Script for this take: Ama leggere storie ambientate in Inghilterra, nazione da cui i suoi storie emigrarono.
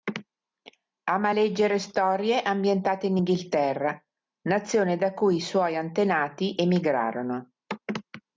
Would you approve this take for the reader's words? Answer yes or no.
no